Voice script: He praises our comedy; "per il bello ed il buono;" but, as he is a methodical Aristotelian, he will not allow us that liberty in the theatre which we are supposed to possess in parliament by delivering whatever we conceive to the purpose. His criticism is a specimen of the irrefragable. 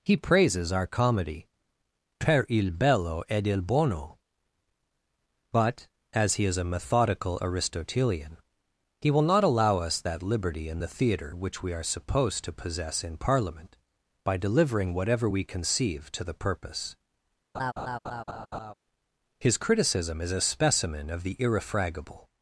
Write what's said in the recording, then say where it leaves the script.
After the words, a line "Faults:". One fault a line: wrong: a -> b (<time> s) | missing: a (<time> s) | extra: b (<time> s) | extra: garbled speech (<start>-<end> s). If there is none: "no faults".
He praises our comedy; "per il bello ed il buono;" but, as he is a methodical Aristotelian, he will not allow us that liberty in the theatre which we are supposed to possess in parliament by delivering whatever we conceive to the purpose. His criticism is a specimen of the irrefragable.
Faults:
no faults